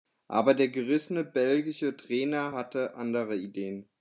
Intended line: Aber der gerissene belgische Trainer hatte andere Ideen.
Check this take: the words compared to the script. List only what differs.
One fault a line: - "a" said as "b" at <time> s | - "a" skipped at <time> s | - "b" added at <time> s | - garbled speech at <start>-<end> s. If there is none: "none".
none